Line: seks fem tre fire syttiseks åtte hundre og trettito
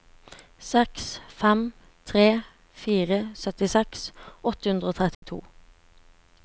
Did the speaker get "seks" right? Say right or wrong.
right